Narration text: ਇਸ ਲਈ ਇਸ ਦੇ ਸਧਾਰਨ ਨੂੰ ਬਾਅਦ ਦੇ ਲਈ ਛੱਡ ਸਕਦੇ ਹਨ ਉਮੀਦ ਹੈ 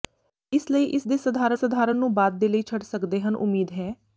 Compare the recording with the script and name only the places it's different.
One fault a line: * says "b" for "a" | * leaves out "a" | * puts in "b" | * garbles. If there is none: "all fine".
* puts in "ਸਧਾਰਨ"